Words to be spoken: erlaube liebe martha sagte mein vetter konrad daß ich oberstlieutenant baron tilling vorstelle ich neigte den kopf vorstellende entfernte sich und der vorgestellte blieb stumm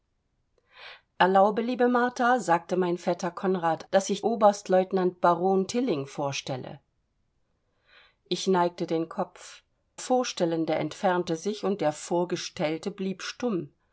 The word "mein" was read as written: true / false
true